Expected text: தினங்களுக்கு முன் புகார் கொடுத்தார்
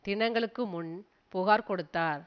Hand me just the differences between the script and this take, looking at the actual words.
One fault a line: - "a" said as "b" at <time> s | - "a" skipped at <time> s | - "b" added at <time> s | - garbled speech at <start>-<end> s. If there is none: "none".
none